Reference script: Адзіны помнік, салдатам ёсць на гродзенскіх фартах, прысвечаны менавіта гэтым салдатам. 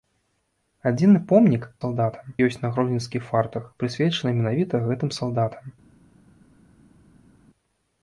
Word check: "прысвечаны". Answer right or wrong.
right